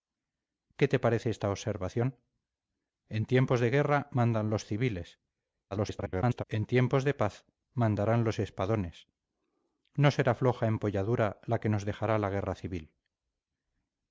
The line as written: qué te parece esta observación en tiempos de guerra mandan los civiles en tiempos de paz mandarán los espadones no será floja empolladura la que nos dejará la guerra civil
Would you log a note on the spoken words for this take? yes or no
yes